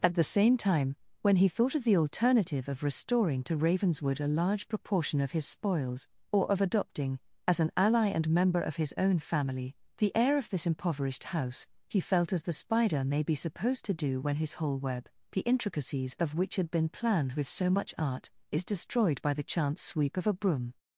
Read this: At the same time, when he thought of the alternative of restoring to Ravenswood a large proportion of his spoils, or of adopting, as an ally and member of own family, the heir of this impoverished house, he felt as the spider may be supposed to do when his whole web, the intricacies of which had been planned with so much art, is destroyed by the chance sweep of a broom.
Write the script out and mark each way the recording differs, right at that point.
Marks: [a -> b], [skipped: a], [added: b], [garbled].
At the same time, when he thought of the alternative of restoring to Ravenswood a large proportion of his spoils, or of adopting, as an ally and member of [added: his] own family, the heir of this impoverished house, he felt as the spider may be supposed to do when his whole web, the intricacies of which had been planned with so much art, is destroyed by the chance sweep of a broom.